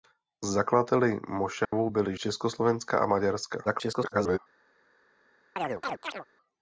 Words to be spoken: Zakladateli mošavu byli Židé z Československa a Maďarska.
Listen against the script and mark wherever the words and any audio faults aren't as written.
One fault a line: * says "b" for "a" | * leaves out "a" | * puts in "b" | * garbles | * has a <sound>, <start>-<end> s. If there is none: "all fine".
* has a dropout, 1.6-1.7 s
* leaves out "Židé z"
* garbles
* has a chirp, 5.6-6.3 s